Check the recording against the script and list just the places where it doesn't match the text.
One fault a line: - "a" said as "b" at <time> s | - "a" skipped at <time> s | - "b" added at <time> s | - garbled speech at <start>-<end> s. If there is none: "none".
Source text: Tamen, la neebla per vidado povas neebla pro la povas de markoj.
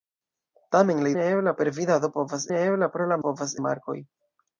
none